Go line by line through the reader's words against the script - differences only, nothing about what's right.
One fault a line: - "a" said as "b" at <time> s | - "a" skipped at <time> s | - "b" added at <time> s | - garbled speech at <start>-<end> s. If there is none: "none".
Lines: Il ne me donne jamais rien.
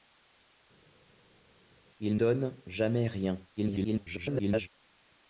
- "ne me" skipped at 2.2 s
- garbled speech at 3.6-4.7 s